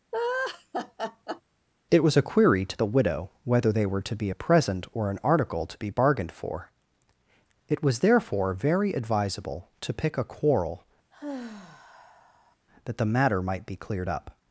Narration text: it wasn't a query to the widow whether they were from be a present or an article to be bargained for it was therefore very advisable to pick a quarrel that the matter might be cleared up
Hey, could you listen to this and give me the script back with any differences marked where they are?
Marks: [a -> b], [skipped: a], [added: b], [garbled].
it [wasn't -> was] a query to the widow whether they were [from -> to] be a present or an article to be bargained for it was therefore very advisable to pick a quarrel that the matter might be cleared up